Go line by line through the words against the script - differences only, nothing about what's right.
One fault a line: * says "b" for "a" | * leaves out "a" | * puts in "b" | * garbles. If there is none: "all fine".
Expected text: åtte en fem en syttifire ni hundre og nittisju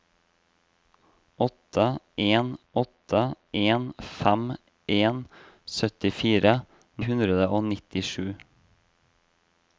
* puts in "åtte en"
* leaves out "ni"